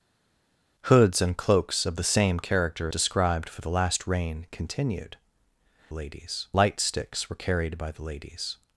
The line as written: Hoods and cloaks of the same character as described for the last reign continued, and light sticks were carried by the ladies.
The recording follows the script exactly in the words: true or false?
false